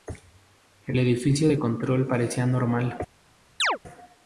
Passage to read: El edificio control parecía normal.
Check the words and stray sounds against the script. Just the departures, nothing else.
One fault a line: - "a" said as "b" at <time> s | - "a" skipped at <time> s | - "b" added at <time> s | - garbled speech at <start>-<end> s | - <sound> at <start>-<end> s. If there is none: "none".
- "de" added at 1.4 s
- chirp at 3.6-3.8 s